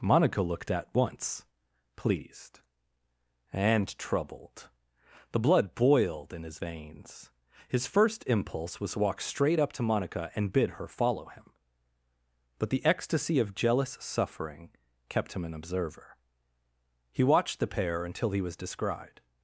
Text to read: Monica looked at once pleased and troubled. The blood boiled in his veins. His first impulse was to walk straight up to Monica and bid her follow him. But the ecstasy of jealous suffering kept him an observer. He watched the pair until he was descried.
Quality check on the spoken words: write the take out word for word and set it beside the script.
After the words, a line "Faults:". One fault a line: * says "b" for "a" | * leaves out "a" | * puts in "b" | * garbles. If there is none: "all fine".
Monica looked at once pleased and troubled. The blood boiled in his veins. His first impulse was to walk straight up to Monica and bid her follow him. But the ecstasy of jealous suffering kept him an observer. He watched the pair until he was descried.
Faults:
all fine